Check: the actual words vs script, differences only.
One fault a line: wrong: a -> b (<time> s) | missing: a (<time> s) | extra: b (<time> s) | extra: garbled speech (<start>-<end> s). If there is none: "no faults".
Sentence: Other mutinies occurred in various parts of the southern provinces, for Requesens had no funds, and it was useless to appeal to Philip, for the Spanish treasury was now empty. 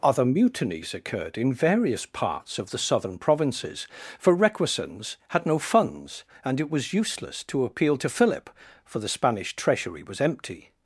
missing: now (10.2 s)